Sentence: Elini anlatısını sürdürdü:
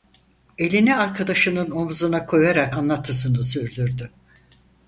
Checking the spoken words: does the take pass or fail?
fail